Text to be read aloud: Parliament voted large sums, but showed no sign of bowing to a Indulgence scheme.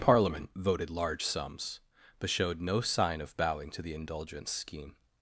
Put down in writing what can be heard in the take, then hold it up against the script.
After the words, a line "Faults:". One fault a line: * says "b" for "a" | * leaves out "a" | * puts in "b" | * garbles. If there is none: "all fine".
Parliament voted large sums, but showed no sign of bowing to the Indulgence scheme.
Faults:
* says "the" for "a"